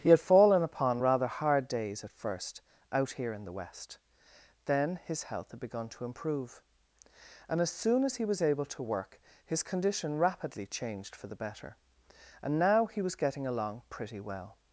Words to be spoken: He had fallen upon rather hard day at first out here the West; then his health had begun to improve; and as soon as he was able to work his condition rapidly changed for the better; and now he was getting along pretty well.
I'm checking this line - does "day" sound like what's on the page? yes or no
no